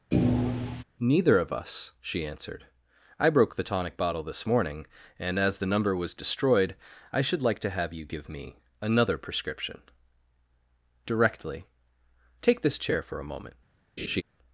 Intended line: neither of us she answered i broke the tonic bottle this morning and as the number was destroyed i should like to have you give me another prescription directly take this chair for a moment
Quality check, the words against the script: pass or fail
pass